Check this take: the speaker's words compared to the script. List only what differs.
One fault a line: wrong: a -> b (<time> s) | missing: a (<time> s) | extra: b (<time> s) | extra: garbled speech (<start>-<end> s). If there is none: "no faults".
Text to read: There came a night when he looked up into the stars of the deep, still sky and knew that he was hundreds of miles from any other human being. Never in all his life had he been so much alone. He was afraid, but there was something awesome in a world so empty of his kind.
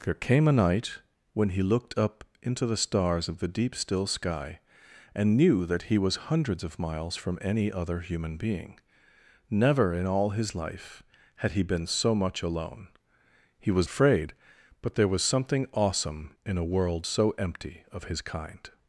no faults